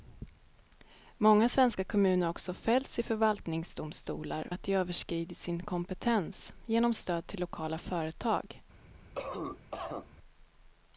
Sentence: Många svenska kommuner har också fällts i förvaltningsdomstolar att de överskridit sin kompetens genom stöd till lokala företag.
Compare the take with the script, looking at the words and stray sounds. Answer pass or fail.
fail